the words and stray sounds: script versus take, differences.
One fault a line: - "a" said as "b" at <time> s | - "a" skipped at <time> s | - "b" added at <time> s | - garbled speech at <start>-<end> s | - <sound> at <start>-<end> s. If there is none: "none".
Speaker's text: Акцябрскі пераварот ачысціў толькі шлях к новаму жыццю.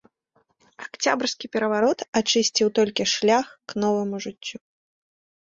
none